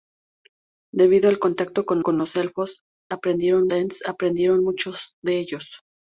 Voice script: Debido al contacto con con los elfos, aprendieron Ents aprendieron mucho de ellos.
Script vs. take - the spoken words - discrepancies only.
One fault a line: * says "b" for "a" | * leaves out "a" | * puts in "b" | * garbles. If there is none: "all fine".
all fine